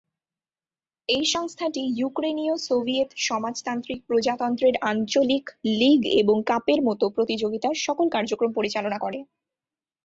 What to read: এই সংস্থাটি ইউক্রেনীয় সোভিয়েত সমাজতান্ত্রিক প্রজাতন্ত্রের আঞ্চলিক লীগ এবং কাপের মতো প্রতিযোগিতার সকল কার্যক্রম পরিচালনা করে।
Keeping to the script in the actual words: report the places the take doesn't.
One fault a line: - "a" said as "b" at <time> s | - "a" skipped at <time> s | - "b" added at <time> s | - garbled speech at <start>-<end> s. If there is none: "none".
none